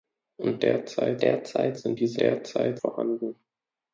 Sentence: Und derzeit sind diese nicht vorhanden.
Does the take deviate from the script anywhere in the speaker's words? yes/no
yes